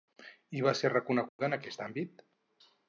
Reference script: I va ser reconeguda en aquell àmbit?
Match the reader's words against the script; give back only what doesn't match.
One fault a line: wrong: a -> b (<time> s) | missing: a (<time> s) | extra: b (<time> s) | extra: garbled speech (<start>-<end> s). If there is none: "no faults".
wrong: aquell -> aquest (1.6 s)